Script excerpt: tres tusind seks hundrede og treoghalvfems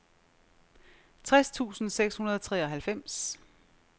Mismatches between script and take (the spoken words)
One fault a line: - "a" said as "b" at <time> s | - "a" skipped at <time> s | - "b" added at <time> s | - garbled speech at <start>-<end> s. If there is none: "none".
none